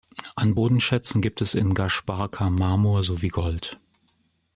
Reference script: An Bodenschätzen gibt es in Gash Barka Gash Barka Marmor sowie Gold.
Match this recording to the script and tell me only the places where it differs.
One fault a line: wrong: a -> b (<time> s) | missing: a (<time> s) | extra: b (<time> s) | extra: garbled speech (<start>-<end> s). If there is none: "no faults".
missing: Gash Barka (2.5 s)